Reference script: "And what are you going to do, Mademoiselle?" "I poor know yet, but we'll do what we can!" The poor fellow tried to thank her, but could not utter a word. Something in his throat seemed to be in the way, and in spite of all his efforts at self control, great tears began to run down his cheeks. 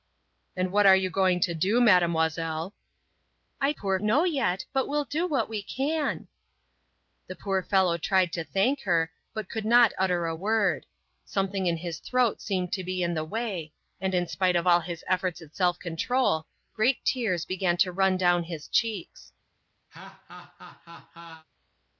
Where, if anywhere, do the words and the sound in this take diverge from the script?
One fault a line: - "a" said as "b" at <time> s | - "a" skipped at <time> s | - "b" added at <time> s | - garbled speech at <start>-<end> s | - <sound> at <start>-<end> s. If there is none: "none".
- laugh at 19.9-21.5 s